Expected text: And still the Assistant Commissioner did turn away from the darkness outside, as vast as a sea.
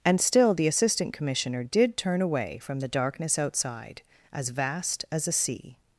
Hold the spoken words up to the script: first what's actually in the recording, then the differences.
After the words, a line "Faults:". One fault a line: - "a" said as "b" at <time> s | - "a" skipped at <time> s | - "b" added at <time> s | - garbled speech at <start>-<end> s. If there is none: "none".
And still the Assistant Commissioner did turn away from the darkness outside, as vast as a sea.
Faults:
none